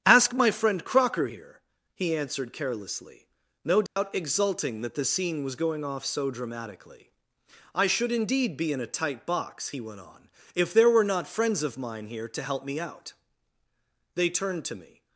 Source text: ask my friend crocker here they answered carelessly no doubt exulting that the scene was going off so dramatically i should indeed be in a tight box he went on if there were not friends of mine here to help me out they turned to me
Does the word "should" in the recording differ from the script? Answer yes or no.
no